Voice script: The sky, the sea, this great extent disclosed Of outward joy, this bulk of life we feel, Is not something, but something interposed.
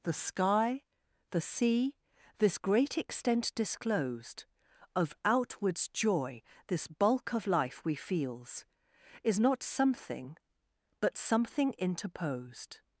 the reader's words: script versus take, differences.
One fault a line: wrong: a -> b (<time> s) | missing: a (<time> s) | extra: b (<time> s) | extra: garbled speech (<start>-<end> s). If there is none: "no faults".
wrong: outward -> outwards (5.2 s)
wrong: feel -> feels (7.9 s)